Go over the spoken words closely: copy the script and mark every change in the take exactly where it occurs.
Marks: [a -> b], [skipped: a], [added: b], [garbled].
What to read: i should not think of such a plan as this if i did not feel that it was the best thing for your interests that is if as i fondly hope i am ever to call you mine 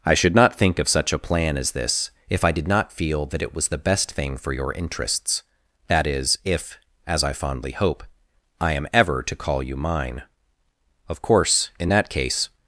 i should not think of such a plan as this if i did not feel that it was the best thing for your interests that is if as i fondly hope i am ever to call you mine [added: of course in that case]